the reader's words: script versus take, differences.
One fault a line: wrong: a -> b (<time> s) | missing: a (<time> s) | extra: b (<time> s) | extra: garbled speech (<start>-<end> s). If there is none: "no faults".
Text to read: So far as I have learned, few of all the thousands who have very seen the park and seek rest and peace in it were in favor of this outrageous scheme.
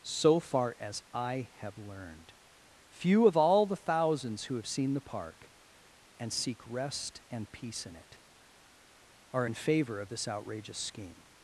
missing: very (4.7 s)
wrong: were -> are (9.3 s)